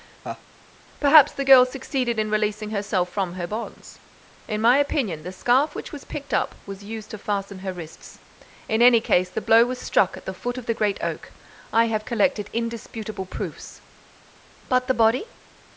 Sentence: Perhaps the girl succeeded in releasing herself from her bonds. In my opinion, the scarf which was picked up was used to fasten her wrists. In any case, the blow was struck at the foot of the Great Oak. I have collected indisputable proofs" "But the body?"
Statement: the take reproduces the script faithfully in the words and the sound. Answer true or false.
false